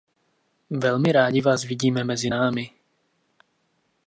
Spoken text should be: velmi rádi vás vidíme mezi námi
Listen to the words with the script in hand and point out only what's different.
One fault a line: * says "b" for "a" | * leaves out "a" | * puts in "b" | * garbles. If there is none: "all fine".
all fine